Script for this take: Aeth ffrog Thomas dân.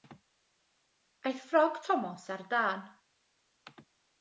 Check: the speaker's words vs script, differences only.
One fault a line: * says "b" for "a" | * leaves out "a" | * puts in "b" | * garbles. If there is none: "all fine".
* puts in "ar"